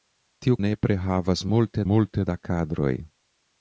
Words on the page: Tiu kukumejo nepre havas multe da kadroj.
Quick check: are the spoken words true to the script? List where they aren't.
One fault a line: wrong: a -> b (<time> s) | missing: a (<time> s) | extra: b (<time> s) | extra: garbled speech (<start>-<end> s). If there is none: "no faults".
missing: kukumejo (0.6 s)
extra: multe (1.9 s)